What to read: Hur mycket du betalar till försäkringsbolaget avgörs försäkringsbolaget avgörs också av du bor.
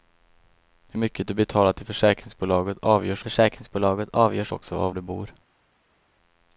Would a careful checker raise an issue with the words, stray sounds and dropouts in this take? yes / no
no